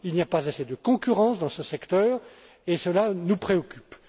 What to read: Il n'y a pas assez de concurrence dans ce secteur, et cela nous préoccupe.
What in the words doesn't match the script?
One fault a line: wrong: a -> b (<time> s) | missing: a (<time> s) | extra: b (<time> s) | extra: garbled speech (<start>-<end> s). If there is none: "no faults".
no faults